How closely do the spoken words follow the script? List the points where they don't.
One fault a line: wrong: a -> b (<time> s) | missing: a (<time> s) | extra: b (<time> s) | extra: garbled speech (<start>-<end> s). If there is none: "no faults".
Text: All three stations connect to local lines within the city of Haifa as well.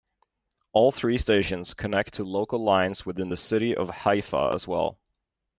no faults